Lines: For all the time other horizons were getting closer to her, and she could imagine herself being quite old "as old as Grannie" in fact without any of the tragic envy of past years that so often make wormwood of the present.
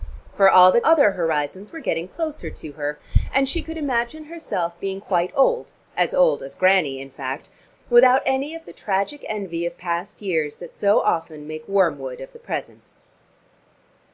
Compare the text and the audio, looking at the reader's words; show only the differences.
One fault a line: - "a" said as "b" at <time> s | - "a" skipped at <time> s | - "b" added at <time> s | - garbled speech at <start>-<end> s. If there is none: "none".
- "time" skipped at 0.8 s